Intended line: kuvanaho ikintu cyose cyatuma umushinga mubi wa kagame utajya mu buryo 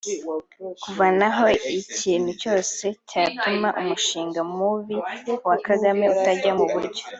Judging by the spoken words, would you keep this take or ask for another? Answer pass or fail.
pass